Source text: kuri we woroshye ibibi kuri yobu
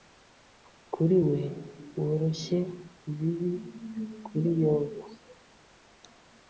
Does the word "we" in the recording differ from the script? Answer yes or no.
no